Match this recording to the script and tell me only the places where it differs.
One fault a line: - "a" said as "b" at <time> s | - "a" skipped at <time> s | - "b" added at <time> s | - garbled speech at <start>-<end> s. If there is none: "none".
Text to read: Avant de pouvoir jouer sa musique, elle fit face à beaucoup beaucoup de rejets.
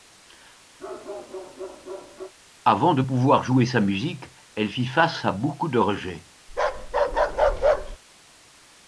- "beaucoup" skipped at 5.7 s